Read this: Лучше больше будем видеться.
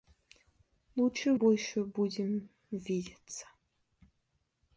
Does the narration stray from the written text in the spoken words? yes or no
no